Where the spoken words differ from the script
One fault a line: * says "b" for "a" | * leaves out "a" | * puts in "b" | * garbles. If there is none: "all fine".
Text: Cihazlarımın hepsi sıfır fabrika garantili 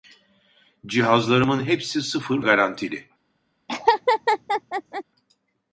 * leaves out "fabrika"